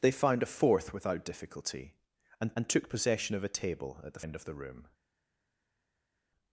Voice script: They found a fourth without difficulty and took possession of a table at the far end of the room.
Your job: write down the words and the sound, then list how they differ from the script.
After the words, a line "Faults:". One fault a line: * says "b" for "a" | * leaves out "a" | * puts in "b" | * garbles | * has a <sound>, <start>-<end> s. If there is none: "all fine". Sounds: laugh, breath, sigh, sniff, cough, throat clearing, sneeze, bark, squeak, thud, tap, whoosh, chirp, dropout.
They found a fourth without difficulty and and took possession of a table at the end of the room.
Faults:
* puts in "and"
* leaves out "far"